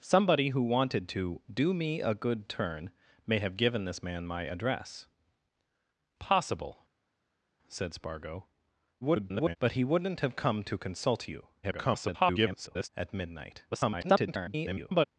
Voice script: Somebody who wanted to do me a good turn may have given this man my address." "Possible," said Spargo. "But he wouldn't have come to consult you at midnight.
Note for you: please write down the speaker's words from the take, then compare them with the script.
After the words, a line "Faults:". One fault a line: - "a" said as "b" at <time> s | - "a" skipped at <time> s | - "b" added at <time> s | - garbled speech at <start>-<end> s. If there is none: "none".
Somebody who wanted to do me a good turn may have given this man my address." "Possible," said Spargo. [garbled] "But he wouldn't have come to consult you [garbled] at midnight. [garbled]
Faults:
- garbled speech at 9.0-9.6 s
- garbled speech at 11.6-12.9 s
- garbled speech at 13.7-15.1 s